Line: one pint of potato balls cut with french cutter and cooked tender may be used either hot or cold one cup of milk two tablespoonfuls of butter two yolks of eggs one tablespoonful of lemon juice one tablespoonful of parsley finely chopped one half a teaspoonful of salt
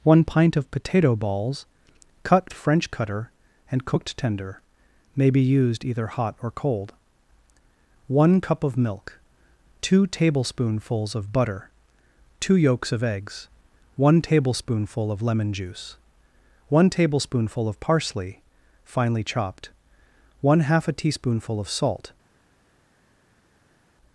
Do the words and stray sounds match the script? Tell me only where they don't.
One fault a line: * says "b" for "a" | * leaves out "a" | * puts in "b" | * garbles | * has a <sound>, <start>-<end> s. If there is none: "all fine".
* leaves out "with"